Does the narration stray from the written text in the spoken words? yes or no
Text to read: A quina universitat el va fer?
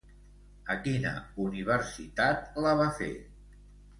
yes